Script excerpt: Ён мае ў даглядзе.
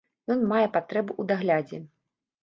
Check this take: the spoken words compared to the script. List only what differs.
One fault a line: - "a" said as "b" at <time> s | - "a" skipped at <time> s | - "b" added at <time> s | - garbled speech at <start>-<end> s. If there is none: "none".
- "патрэбу" added at 0.8 s